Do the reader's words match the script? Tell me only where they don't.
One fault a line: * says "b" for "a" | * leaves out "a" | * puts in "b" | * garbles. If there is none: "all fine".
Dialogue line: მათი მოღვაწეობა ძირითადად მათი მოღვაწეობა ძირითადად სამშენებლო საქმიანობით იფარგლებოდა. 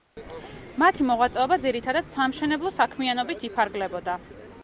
* leaves out "მათი მოღვაწეობა ძირითადად"